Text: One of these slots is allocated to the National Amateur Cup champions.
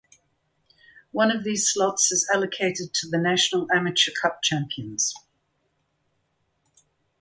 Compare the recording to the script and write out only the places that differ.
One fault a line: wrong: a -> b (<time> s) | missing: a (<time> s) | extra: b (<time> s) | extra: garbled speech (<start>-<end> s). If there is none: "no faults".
no faults